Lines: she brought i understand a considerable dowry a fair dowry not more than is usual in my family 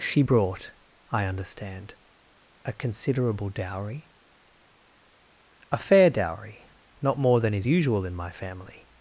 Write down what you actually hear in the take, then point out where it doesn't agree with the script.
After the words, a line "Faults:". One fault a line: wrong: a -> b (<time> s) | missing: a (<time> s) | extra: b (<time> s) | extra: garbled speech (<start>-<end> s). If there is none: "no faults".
she brought i understand a considerable dowry a fair dowry not more than is usual in my family
Faults:
no faults